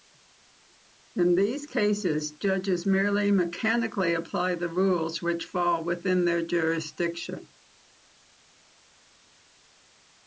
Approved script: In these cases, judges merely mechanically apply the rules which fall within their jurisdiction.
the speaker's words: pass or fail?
pass